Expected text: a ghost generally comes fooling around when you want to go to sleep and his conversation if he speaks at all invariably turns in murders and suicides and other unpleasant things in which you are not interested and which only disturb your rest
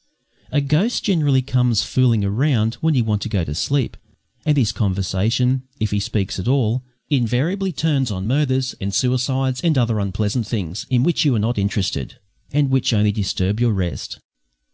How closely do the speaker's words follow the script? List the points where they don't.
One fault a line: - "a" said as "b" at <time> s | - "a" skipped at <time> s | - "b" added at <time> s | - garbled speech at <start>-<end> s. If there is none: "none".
- "in" said as "on" at 8.1 s